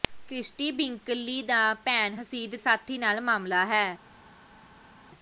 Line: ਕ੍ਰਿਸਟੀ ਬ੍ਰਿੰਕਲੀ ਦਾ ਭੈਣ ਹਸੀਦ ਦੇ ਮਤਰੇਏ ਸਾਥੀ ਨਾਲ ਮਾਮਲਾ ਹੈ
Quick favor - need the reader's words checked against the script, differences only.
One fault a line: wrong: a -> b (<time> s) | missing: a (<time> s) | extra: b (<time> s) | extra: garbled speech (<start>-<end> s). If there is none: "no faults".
missing: ਦੇ ਮਤਰੇਏ (2.5 s)